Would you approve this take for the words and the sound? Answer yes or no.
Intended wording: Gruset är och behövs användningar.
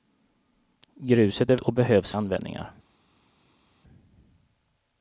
yes